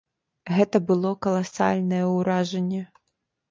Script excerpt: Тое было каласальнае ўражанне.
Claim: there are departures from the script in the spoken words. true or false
true